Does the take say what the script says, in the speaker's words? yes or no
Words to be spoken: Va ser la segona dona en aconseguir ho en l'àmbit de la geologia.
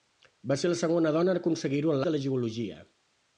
no